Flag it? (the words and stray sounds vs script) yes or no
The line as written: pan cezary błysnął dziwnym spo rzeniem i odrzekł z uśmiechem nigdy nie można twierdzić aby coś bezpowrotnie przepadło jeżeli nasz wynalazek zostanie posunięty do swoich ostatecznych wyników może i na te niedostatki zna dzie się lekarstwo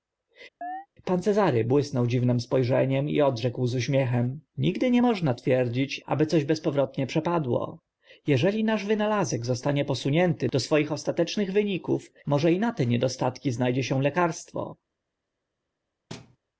yes